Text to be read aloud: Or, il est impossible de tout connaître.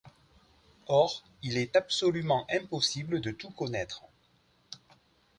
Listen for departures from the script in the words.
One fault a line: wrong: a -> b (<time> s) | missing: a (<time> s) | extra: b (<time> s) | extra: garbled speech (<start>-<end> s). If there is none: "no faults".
extra: absolument (1.8 s)